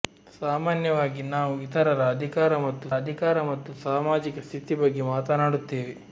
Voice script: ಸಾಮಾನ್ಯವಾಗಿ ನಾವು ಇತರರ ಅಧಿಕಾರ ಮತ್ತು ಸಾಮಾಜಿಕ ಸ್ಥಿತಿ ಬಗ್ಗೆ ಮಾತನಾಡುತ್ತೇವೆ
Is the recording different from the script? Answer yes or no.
yes